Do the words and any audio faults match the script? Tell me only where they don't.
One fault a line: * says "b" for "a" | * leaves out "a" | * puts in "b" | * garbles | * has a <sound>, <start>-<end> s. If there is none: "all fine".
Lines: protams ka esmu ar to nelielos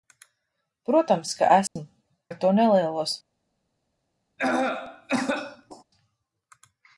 * has a dropout, 1.7-1.8 s
* has a cough, 4.4-5.8 s